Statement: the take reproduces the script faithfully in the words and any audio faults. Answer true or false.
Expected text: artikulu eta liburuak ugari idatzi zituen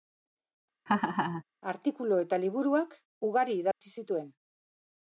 false